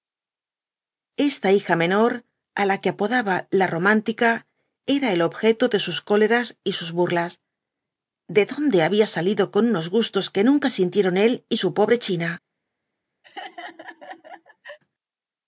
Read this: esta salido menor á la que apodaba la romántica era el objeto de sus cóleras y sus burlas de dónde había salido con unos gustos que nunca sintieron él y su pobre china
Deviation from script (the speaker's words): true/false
true